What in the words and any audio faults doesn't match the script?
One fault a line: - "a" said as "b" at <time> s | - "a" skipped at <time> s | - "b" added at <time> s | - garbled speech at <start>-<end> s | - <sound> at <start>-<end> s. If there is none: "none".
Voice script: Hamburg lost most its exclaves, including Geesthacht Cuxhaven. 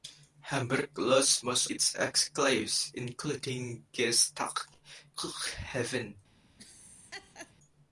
- laugh at 6.6-7.5 s